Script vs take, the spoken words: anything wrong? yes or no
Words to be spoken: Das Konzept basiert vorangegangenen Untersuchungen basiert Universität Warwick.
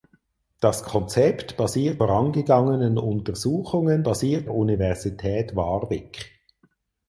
no